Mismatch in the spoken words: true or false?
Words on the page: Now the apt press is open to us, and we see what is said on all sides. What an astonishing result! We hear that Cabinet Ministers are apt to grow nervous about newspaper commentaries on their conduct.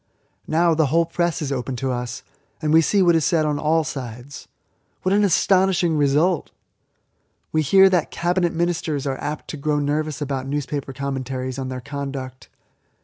true